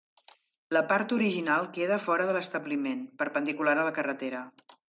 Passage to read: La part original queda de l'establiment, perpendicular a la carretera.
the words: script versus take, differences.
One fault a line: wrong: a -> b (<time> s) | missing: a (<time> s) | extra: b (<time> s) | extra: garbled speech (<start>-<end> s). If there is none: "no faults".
extra: fora (2.0 s)